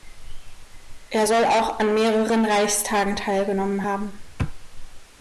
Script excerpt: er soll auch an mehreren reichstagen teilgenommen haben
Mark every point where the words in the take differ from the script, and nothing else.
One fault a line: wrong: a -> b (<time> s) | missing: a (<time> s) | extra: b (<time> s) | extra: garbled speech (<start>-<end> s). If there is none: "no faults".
no faults